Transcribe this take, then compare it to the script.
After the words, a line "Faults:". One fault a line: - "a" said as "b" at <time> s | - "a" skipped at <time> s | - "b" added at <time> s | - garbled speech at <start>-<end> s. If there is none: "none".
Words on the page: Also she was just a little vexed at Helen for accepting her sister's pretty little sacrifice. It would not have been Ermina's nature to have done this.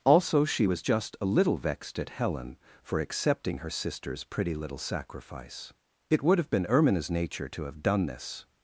Also she was just a little vexed at Helen for accepting her sister's pretty little sacrifice. It would have been Ermina's nature to have done this.
Faults:
- "not" skipped at 6.4 s